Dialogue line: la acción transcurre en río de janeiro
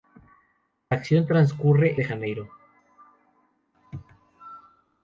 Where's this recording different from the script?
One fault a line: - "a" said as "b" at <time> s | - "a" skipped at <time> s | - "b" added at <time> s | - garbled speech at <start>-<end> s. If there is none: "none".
- "en río" skipped at 2.0 s